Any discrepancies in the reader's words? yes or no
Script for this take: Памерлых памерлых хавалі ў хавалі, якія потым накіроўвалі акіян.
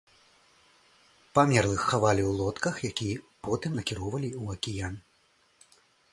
yes